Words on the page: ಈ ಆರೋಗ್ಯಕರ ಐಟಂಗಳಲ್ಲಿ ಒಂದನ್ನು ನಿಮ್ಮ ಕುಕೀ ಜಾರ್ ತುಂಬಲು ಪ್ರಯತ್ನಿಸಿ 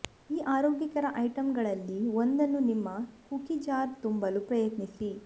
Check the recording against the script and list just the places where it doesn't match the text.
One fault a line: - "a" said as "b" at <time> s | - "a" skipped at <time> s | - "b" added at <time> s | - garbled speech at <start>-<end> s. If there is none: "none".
none